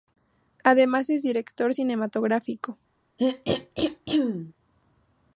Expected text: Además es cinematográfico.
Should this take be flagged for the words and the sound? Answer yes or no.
yes